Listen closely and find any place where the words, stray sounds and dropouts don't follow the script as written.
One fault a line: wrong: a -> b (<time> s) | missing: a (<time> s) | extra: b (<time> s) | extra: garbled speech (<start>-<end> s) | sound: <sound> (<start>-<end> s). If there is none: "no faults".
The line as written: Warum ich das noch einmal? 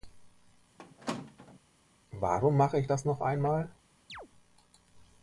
sound: squeak (0.8-1.6 s)
extra: mache (2.6 s)
sound: chirp (4.1-4.3 s)